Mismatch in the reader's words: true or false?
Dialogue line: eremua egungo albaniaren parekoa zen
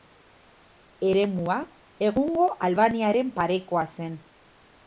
false